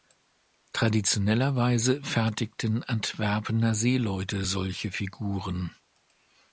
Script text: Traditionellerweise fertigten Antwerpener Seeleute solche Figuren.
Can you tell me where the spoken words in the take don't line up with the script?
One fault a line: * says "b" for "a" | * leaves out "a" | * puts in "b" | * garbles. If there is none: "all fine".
all fine